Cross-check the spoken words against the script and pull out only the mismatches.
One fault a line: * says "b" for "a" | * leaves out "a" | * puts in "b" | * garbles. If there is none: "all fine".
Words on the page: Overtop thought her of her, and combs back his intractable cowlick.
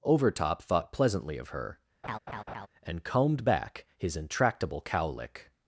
* says "pleasantly" for "her"
* says "combed" for "combs"